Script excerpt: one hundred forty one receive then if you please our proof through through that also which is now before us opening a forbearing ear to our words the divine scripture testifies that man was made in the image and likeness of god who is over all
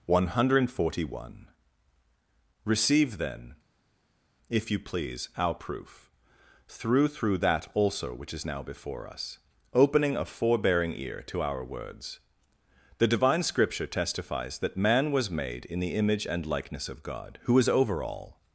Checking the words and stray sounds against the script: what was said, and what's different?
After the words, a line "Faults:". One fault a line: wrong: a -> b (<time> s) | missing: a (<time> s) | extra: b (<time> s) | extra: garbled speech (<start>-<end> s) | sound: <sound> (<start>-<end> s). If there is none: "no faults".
one hundred forty one receive then if you please our proof through through that also which is now before us opening a forbearing ear to our words the divine scripture testifies that man was made in the image and likeness of god who is over all
Faults:
no faults